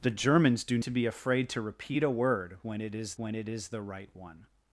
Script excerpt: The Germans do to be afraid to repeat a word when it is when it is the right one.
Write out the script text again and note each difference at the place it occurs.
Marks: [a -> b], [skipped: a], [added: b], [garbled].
The Germans do to be afraid to repeat a word when it is when it is the right one.